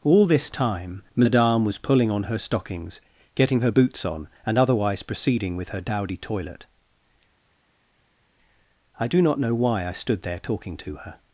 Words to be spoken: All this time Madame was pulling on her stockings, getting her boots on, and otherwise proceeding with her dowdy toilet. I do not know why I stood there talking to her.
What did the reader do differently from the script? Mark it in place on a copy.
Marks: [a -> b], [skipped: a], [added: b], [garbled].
All this time Madame was pulling on her stockings, getting her boots on, and otherwise proceeding with her dowdy toilet. I do not know why I stood there talking to her.